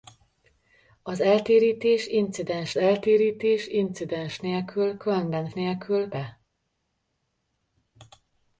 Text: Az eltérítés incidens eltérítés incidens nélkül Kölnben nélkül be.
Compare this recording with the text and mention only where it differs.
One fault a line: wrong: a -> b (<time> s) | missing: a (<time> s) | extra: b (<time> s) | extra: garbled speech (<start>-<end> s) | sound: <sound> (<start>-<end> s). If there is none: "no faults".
no faults